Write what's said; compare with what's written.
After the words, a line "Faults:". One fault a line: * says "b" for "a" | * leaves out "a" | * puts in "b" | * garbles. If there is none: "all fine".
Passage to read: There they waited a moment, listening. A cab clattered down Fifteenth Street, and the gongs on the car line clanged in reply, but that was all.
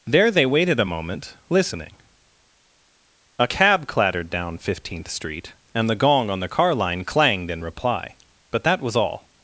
There they waited a moment, listening. A cab clattered down Fifteenth Street, and the gong on the car line clanged in reply, but that was all.
Faults:
* says "gong" for "gongs"